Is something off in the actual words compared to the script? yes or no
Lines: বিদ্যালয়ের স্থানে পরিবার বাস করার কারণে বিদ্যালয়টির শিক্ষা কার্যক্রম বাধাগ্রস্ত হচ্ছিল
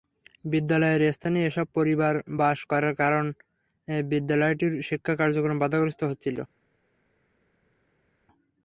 yes